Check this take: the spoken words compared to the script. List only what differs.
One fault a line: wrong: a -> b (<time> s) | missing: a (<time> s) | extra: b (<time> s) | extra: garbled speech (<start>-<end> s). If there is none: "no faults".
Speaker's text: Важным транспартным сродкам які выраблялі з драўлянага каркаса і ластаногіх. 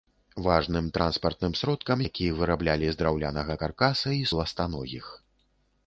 no faults